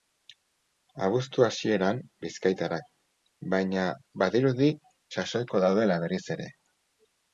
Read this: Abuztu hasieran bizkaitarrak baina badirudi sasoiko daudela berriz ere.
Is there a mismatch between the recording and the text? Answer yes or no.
no